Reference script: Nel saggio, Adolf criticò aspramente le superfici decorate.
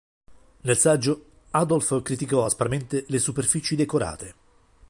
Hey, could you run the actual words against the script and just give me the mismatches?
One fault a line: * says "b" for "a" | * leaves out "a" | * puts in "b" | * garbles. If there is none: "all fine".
all fine